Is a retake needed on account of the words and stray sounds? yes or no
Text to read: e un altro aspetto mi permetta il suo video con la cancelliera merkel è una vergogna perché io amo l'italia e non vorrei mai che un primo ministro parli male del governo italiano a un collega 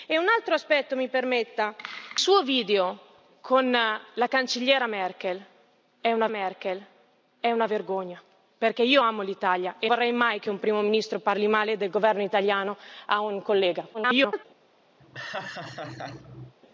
yes